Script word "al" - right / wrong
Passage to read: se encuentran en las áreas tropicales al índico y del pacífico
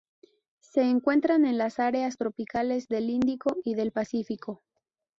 wrong